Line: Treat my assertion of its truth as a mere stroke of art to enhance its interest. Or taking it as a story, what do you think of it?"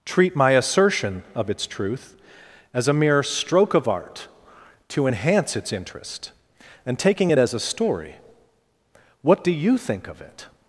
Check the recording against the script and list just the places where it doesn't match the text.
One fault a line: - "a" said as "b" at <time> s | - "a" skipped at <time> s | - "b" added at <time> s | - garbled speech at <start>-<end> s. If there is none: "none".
- "Or" said as "And" at 6.8 s